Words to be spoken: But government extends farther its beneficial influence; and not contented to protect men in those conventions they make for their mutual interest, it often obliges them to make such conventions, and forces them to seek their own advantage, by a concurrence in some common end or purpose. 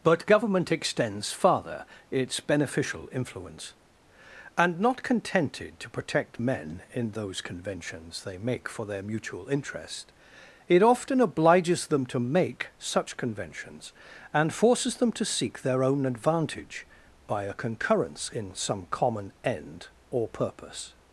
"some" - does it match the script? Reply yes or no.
yes